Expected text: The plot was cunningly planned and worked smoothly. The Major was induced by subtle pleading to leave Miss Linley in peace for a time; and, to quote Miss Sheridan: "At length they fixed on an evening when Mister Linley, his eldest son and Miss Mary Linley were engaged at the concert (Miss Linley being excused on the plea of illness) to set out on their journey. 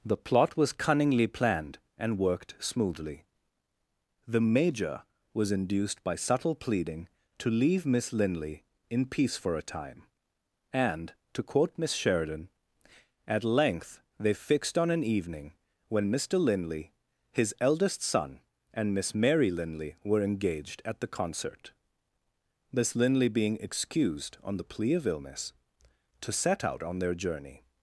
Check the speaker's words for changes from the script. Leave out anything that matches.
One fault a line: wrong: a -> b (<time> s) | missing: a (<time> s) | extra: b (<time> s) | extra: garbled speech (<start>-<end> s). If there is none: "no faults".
no faults